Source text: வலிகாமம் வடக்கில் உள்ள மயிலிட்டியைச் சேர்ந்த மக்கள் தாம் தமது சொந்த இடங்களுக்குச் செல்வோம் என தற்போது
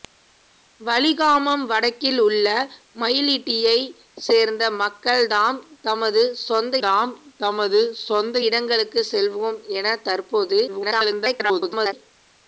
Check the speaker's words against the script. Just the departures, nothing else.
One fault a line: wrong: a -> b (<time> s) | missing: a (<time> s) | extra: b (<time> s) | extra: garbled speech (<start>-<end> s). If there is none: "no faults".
extra: தாம் தமது சொந்த (6.8 s)
extra: garbled speech (10.7-11.9 s)